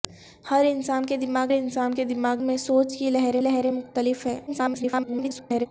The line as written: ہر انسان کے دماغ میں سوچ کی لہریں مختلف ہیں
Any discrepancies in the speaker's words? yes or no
yes